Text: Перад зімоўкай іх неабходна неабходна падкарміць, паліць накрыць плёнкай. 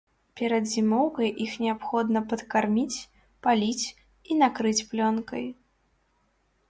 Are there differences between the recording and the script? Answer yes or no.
yes